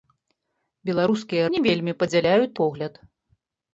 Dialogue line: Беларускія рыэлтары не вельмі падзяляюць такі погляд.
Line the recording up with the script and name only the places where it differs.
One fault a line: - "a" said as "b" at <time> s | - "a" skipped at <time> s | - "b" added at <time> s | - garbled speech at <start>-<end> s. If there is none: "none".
- "рыэлтары" skipped at 1.4 s
- "такі" skipped at 2.5 s